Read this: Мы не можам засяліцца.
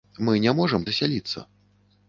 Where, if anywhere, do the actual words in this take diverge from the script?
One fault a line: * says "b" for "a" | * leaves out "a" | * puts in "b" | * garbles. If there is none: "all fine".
all fine